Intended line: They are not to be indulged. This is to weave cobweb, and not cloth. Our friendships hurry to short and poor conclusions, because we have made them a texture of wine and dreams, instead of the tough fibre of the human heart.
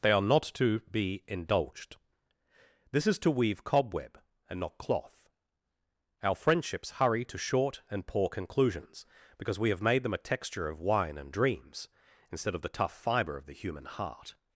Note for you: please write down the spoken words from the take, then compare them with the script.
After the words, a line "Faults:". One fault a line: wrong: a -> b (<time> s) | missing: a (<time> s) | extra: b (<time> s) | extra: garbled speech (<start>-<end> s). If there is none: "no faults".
They are not to be indulged. This is to weave cobweb, and not cloth. Our friendships hurry to short and poor conclusions, because we have made them a texture of wine and dreams, instead of the tough fibre of the human heart.
Faults:
no faults